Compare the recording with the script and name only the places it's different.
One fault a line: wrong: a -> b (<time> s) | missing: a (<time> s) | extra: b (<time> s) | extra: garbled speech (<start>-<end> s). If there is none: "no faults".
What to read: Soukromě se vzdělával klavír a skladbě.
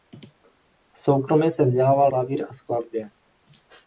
no faults